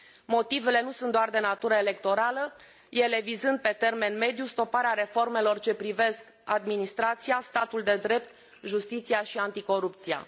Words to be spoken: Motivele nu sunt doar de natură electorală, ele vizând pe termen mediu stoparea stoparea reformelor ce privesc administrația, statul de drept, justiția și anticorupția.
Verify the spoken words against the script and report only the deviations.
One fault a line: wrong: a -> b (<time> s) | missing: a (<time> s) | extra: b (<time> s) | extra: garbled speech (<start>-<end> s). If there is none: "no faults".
missing: stoparea (4.9 s)